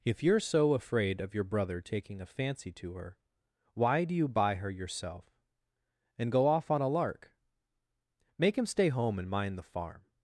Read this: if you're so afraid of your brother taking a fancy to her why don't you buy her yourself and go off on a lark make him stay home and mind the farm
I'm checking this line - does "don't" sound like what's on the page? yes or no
no